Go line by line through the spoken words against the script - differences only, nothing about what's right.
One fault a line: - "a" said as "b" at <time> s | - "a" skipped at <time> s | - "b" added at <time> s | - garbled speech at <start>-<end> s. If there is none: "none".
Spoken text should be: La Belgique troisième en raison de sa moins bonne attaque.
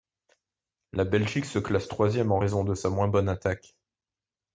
- "se classe" added at 1.4 s